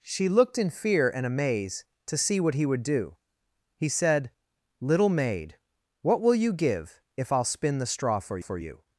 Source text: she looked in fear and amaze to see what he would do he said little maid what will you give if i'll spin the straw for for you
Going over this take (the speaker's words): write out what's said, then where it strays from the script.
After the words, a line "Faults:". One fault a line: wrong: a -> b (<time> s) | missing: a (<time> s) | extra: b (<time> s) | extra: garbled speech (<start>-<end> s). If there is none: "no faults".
she looked in fear and amaze to see what he would do he said little maid what will you give if i'll spin the straw for for you
Faults:
no faults